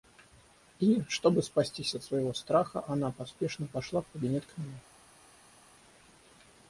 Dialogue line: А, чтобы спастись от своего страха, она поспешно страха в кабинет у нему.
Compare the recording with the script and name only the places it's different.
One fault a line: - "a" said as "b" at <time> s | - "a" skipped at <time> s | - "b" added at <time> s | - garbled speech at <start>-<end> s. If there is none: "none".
- "А" said as "И" at 0.8 s
- "страха" said as "пошла" at 3.7 s
- "у" said as "к" at 4.4 s